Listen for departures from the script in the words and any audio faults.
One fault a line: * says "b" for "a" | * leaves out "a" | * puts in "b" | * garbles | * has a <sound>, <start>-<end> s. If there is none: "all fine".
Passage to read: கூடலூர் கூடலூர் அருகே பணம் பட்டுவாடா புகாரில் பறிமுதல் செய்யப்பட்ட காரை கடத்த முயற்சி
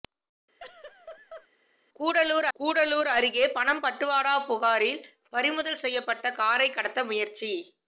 * has a laugh, 0.6-1.5 s